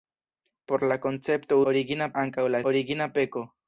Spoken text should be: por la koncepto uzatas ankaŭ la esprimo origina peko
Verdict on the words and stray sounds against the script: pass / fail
fail